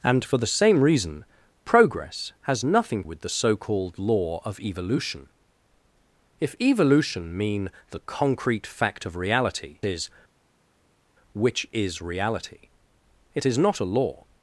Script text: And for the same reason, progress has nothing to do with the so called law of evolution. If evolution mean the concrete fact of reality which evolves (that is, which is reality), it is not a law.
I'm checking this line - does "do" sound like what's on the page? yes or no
no